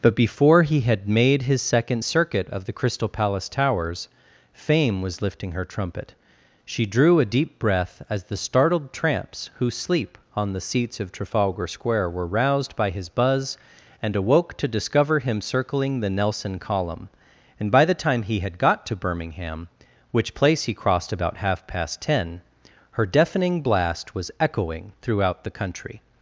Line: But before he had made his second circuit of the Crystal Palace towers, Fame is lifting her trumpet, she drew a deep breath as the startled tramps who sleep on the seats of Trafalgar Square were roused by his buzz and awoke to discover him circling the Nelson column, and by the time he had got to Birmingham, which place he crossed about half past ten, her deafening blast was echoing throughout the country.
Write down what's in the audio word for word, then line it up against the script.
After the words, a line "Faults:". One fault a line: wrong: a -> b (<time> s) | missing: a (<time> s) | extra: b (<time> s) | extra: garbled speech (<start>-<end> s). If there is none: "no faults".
But before he had made his second circuit of the Crystal Palace towers, Fame was lifting her trumpet, she drew a deep breath as the startled tramps who sleep on the seats of Trafalgar Square were roused by his buzz and awoke to discover him circling the Nelson column, and by the time he had got to Birmingham, which place he crossed about half past ten, her deafening blast was echoing throughout the country.
Faults:
wrong: is -> was (5.0 s)